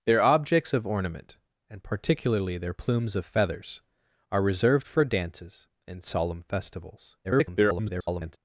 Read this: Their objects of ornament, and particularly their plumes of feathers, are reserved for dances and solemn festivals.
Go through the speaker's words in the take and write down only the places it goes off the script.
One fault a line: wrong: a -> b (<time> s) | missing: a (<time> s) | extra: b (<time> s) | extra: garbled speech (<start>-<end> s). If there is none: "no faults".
extra: garbled speech (7.2-8.4 s)